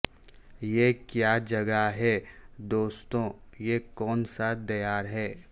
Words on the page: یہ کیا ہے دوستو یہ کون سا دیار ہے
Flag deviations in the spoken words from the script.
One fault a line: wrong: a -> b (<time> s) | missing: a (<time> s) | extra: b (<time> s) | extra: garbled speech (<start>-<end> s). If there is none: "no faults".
extra: جگہ (1.4 s)